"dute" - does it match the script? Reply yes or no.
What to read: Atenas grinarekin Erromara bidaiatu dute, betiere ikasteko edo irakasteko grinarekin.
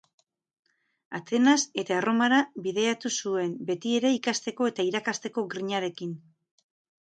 no